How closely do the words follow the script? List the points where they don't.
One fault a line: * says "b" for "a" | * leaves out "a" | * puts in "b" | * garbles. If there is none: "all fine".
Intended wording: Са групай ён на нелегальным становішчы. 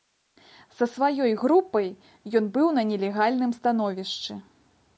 * puts in "сваёй"
* puts in "быў"